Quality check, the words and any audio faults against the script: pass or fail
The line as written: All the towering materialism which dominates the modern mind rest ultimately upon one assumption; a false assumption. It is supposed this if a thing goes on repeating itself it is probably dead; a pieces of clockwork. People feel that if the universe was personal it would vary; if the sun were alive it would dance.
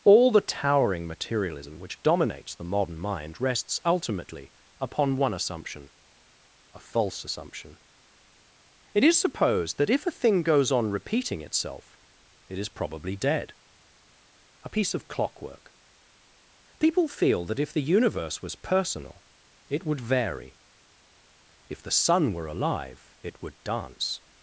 fail